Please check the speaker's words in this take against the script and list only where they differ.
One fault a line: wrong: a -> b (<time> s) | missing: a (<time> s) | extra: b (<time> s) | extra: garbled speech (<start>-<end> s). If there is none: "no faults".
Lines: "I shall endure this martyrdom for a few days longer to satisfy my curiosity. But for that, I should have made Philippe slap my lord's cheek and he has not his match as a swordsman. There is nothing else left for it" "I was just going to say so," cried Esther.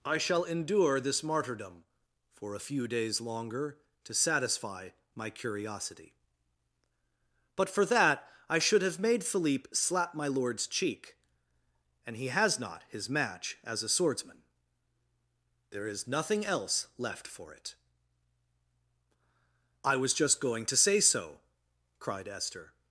no faults